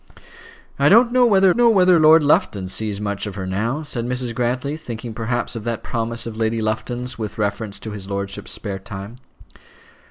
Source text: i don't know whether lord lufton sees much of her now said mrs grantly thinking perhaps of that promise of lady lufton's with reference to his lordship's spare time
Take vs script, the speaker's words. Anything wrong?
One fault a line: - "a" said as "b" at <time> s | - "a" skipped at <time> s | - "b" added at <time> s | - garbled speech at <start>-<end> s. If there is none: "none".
- "know whether" added at 1.5 s